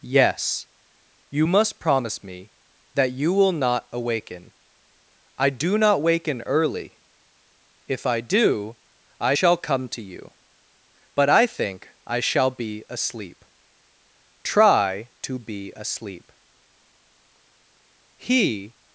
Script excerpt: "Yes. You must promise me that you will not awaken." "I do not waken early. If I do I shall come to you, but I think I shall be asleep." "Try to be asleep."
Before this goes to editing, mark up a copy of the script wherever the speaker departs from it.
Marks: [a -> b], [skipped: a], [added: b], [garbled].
"Yes. You must promise me that you will not awaken." "I do not waken early. If I do I shall come to you, but I think I shall be asleep." "Try to be asleep." [added: He]